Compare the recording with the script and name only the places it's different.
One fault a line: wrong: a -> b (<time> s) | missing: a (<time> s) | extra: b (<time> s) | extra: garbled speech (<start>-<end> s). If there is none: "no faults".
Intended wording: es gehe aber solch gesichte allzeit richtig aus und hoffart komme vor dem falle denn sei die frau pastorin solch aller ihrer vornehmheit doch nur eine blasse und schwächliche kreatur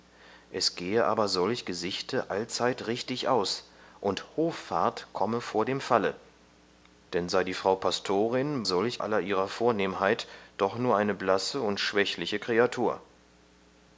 no faults